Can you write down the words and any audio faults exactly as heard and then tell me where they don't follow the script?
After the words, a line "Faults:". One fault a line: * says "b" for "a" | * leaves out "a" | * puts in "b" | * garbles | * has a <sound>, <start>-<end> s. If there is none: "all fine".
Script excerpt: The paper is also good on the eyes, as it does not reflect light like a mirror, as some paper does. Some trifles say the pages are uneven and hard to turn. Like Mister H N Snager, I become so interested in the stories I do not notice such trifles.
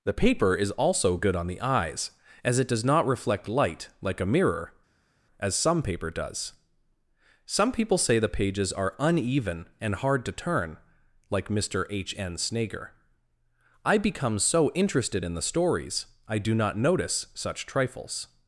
The paper is also good on the eyes, as it does not reflect light like a mirror, as some paper does. Some people say the pages are uneven and hard to turn. Like Mister H N Snager, I become so interested in the stories I do not notice such trifles.
Faults:
* says "people" for "trifles"